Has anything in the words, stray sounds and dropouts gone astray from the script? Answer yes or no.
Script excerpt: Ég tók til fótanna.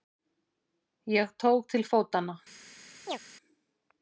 yes